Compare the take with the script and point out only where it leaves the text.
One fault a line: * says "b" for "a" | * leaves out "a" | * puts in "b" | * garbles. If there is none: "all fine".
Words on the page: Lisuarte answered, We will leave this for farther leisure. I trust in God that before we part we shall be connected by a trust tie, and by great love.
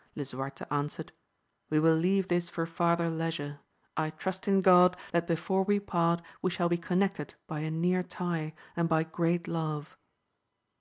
* says "near" for "trust"